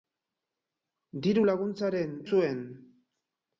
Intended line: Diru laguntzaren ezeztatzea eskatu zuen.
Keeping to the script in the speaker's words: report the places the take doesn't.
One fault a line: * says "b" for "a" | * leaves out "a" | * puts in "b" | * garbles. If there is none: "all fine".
* leaves out "ezeztatzea eskatu"